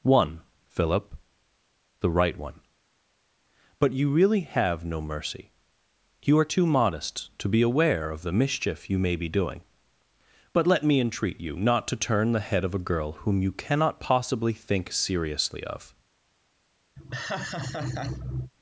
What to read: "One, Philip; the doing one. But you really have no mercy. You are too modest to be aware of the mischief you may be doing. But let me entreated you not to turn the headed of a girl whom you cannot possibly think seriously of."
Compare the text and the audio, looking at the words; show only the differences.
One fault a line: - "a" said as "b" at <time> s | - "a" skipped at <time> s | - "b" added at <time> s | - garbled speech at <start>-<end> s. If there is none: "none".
- "doing" said as "right" at 2.1 s
- "entreated" said as "entreat" at 11.0 s
- "headed" said as "head" at 12.4 s